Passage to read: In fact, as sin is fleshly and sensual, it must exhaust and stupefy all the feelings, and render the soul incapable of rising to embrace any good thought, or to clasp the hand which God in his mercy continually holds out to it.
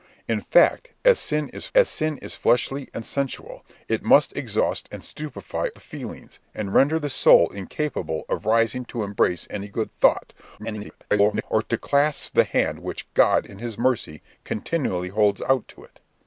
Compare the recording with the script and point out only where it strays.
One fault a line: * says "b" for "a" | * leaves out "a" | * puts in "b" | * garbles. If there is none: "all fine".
* puts in "as sin is"
* leaves out "all"
* garbles